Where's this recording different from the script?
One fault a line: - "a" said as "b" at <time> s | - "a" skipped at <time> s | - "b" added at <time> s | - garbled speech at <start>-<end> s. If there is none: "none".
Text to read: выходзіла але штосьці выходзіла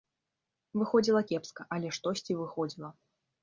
- "кепска" added at 1.3 s